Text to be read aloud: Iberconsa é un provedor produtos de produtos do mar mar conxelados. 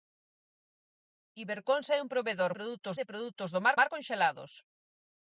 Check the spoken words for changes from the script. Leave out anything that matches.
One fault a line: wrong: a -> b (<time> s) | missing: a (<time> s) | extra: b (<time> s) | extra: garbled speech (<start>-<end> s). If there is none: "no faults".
no faults